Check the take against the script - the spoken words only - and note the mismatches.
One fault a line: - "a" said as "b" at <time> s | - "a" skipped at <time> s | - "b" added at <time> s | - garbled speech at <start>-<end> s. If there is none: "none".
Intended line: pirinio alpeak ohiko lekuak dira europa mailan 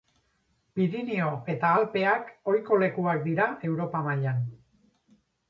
- "eta" added at 1.5 s